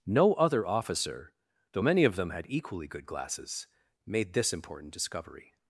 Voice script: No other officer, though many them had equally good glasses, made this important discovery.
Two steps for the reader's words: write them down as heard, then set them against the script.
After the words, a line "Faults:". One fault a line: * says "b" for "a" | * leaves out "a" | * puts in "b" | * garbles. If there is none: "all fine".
No other officer, though many of them had equally good glasses, made this important discovery.
Faults:
* puts in "of"